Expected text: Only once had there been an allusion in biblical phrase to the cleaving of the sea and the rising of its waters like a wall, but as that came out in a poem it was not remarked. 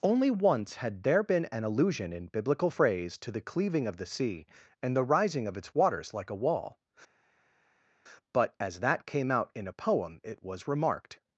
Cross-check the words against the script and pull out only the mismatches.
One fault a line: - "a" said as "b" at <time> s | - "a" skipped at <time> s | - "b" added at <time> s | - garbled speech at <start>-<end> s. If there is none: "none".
- "not" skipped at 10.7 s